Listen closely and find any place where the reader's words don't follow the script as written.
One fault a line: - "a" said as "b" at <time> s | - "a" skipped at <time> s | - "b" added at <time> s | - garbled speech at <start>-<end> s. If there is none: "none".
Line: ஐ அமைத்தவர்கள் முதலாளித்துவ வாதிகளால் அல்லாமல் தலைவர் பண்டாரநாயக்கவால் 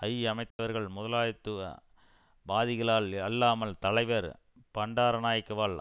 none